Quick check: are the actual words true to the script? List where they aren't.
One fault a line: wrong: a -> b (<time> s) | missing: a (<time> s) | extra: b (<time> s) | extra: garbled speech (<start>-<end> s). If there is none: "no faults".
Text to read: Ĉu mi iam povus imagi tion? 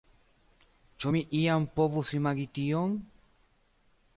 no faults